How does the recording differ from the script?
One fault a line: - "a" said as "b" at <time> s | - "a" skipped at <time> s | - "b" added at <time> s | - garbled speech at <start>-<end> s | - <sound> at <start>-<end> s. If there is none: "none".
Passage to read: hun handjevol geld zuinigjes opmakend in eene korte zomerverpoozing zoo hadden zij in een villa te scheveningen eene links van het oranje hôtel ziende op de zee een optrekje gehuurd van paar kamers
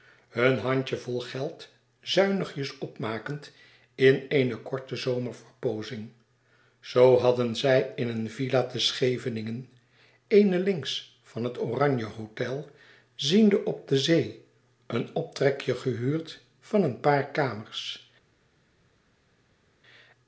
- "een" added at 16.8 s